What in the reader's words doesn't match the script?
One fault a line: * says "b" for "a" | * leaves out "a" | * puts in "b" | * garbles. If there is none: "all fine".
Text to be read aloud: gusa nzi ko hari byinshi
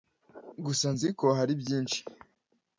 all fine